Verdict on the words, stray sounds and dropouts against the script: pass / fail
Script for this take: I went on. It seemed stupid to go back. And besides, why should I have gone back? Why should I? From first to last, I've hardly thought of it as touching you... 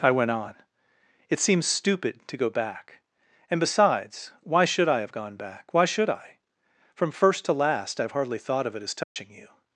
fail